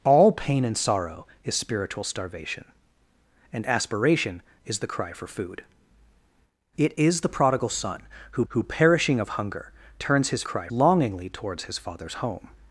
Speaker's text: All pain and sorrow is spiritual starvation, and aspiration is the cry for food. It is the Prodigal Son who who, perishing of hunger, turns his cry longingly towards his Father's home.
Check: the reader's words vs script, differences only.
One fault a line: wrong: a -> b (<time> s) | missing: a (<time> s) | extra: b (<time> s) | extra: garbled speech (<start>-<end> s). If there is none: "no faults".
no faults